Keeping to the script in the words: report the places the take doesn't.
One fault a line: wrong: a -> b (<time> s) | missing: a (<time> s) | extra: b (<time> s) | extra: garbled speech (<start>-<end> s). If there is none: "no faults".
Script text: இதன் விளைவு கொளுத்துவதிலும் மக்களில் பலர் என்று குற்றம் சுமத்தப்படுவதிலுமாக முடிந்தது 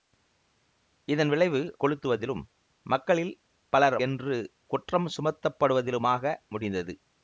no faults